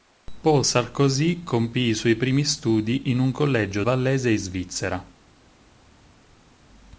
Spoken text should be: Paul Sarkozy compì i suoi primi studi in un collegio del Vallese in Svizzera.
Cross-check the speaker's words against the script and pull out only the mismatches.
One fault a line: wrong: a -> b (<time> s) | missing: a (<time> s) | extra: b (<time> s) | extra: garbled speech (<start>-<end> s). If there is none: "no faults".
missing: del (3.8 s)